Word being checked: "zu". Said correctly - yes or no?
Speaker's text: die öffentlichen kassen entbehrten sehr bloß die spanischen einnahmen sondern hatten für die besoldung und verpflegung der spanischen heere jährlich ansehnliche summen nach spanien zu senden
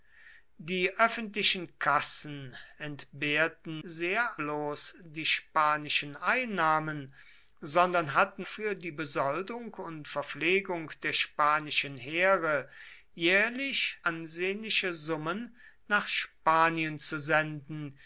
yes